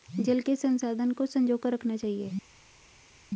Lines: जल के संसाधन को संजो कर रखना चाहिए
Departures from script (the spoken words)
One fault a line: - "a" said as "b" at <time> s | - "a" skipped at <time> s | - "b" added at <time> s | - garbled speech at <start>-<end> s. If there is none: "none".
none